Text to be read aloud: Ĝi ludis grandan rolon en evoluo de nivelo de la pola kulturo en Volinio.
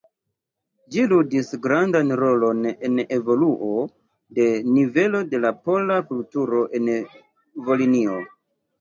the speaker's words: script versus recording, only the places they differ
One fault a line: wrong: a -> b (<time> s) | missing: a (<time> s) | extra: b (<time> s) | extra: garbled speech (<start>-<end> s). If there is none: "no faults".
no faults